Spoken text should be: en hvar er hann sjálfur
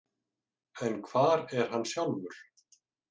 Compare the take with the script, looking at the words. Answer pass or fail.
pass